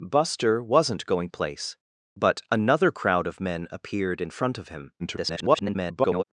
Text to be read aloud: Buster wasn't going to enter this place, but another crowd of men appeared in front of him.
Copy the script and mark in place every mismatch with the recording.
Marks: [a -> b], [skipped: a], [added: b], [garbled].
Buster wasn't going [skipped: to enter this] place, but another crowd of men appeared in front of him. [garbled]